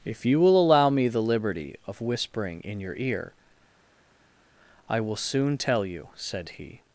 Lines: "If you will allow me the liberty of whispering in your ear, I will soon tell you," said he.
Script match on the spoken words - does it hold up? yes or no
yes